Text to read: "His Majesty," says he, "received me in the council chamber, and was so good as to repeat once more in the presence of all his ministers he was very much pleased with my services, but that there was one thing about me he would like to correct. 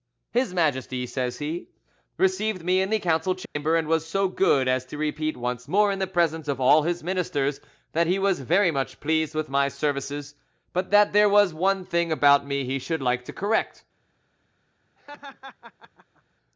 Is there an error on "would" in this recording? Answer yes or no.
yes